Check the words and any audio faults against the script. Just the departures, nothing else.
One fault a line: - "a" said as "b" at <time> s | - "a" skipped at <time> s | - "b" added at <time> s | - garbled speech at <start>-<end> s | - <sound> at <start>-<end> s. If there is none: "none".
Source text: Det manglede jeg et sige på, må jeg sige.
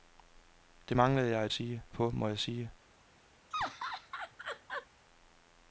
- laugh at 3.5-4.9 s